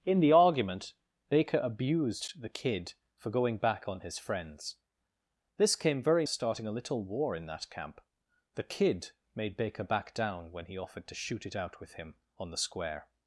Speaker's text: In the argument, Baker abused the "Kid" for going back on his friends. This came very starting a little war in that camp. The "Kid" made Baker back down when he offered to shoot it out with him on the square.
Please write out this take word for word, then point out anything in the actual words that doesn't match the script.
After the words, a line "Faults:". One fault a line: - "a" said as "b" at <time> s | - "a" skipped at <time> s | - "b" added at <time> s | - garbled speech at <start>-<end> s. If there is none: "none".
In the argument, Baker abused the "Kid" for going back on his friends. This came very starting a little war in that camp. The "Kid" made Baker back down when he offered to shoot it out with him on the square.
Faults:
none